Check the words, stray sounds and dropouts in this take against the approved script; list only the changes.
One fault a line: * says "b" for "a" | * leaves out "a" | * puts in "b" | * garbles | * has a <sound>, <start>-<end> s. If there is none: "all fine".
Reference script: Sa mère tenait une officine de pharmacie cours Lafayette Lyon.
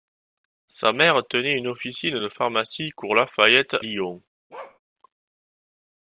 * has a bark, 4.5-4.8 s